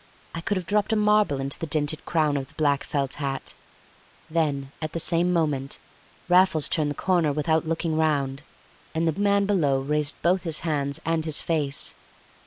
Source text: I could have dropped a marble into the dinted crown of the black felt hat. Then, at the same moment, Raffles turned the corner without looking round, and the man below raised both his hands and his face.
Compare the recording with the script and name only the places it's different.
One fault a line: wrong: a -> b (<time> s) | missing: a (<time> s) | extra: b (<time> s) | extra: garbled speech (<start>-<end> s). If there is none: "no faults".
no faults